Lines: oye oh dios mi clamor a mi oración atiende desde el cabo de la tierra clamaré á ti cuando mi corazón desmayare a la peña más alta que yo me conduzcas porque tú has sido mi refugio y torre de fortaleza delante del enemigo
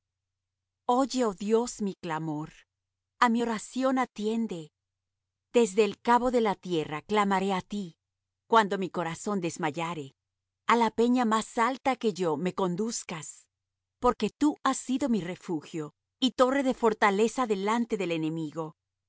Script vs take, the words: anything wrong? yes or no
no